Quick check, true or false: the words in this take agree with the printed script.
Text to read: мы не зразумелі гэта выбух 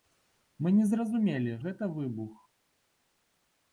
true